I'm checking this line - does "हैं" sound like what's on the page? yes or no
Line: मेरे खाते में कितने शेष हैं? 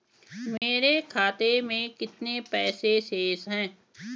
yes